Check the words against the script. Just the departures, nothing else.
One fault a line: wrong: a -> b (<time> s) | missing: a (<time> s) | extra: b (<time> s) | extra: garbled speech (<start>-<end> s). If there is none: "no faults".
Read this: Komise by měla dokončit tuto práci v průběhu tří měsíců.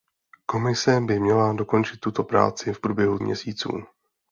missing: tří (3.2 s)